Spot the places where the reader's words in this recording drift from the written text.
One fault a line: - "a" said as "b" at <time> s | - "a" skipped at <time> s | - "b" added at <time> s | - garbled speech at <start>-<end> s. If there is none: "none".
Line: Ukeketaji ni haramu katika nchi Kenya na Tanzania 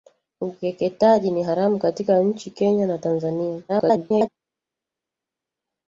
- garbled speech at 3.7-4.3 s